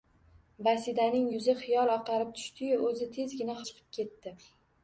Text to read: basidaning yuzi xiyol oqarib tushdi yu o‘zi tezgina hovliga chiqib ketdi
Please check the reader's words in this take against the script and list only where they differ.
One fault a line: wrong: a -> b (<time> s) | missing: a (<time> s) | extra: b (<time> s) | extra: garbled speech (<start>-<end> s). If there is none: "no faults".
missing: hovliga (3.6 s)